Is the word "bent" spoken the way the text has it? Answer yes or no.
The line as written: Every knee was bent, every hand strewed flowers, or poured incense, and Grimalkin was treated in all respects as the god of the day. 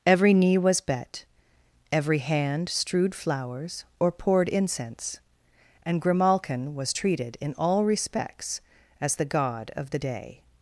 no